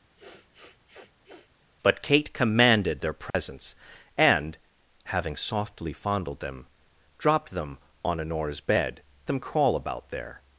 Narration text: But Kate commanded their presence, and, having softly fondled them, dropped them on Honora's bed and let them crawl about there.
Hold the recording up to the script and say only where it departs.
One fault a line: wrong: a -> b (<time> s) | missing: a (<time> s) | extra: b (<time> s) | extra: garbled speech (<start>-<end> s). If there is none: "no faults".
missing: and let (9.0 s)